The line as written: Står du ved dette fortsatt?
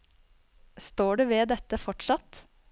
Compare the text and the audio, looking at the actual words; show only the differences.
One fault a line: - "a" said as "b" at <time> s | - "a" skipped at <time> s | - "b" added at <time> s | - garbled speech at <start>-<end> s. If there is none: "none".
none